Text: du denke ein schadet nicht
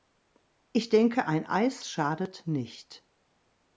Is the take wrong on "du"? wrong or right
wrong